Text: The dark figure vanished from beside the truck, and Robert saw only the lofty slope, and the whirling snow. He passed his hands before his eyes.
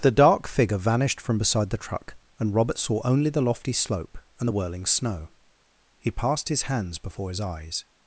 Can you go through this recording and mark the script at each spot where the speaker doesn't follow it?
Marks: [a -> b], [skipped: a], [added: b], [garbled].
The dark figure vanished from beside the truck, and Robert saw only the lofty slope, and the whirling snow. He passed his hands before his eyes.